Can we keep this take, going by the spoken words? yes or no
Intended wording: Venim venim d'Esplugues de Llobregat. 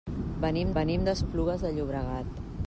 yes